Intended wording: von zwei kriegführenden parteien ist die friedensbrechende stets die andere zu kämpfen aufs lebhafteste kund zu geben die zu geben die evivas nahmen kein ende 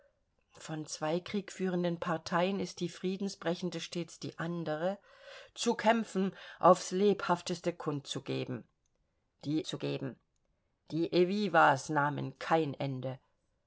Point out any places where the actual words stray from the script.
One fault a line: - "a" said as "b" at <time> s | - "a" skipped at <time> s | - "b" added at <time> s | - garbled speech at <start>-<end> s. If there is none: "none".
none